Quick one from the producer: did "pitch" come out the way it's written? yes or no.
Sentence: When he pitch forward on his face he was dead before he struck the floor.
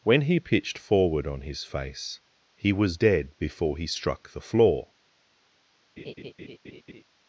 no